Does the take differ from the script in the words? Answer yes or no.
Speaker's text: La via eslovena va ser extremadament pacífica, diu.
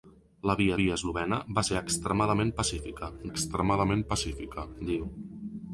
yes